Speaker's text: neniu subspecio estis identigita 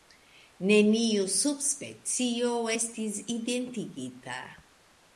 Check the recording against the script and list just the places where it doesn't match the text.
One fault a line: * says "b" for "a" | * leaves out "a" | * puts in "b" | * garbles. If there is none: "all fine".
all fine